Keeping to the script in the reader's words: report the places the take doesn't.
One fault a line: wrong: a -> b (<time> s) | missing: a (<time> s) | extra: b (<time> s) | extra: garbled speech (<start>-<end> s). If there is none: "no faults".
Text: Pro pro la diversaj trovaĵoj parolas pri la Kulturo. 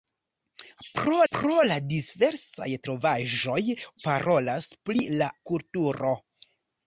no faults